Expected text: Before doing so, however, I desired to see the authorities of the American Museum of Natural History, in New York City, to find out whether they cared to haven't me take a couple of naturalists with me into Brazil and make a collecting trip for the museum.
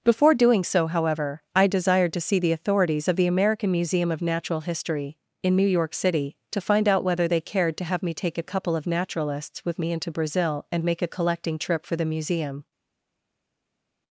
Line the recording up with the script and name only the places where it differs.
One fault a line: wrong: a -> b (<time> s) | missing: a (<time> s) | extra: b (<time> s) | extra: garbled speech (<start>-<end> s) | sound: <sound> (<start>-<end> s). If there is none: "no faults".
wrong: haven't -> have (7.8 s)